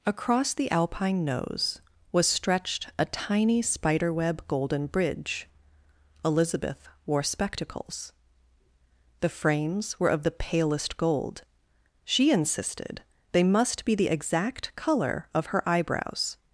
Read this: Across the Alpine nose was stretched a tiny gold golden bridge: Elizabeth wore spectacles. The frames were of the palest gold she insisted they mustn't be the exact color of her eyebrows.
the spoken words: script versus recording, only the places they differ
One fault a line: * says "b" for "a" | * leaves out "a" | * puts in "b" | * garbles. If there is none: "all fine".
* says "spiderweb" for "gold"
* says "must" for "mustn't"